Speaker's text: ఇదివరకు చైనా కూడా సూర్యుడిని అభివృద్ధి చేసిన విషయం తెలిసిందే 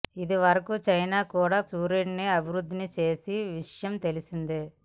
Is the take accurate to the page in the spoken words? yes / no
yes